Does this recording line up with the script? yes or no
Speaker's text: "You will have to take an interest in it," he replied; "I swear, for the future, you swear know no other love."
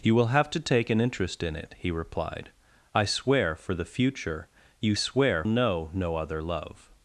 yes